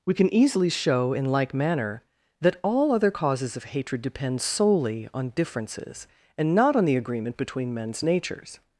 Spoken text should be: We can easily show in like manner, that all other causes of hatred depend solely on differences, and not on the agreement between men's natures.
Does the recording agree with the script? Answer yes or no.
yes